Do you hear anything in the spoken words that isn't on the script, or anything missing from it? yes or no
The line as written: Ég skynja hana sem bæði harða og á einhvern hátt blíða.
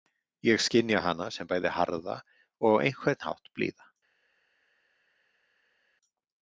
no